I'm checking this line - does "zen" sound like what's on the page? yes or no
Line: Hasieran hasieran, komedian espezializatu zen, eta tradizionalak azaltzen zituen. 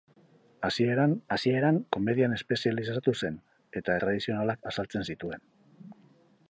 yes